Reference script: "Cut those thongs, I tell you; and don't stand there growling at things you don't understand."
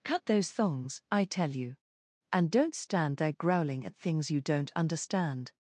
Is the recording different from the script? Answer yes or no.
no